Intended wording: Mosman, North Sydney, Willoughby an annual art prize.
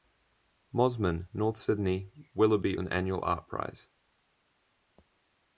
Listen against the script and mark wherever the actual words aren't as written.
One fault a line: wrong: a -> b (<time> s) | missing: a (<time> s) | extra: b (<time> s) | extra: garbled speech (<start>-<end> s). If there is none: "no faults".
no faults